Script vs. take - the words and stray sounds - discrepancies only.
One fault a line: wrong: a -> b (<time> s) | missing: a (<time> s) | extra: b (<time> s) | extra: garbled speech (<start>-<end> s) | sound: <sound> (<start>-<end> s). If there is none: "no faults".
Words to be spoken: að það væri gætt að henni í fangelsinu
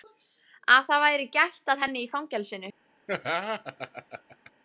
sound: laugh (3.1-4.5 s)